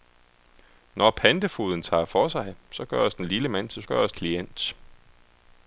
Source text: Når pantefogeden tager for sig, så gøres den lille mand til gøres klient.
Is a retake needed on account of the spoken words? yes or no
no